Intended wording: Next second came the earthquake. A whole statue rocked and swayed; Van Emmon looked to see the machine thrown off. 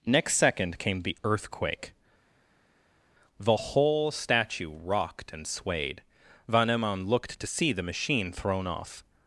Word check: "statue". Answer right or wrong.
right